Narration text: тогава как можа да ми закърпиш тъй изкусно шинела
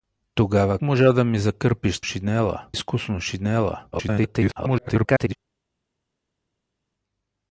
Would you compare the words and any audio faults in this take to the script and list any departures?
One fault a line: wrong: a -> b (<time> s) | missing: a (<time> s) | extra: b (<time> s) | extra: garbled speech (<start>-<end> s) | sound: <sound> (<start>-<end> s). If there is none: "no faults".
missing: как (0.8 s)
wrong: тъй -> шинела (2.0 s)
extra: garbled speech (3.9-5.4 s)